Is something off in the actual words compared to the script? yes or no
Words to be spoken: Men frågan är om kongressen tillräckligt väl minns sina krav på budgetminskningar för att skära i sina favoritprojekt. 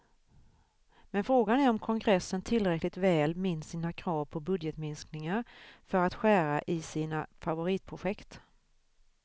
no